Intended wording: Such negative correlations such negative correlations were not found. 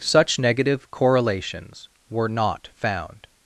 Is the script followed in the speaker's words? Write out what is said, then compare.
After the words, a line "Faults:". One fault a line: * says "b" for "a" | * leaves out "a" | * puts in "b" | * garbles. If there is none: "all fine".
Such negative correlations were not found.
Faults:
* leaves out "such negative correlations"